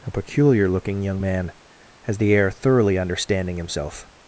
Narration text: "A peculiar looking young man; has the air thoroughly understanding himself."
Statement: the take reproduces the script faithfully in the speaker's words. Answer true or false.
true